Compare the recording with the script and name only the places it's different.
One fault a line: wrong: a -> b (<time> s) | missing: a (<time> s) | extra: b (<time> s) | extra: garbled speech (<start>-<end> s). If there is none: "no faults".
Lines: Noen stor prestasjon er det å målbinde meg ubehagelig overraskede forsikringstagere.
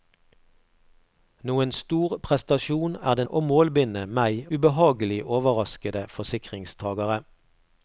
no faults